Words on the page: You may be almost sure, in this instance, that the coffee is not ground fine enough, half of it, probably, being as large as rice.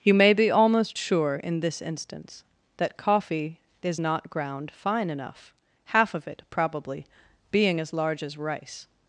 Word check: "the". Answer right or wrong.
wrong